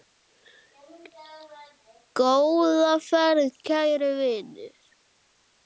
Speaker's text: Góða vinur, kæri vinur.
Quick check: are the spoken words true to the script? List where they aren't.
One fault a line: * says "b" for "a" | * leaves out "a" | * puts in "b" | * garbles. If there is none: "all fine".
* says "ferð" for "vinur"